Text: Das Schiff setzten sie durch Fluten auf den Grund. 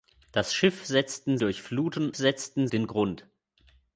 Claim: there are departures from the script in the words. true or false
true